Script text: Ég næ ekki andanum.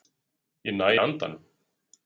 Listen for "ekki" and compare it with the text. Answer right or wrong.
wrong